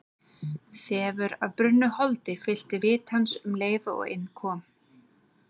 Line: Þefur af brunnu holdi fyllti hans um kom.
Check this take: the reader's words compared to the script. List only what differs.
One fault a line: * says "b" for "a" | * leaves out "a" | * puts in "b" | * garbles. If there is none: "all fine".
* puts in "vit"
* puts in "leið og inn"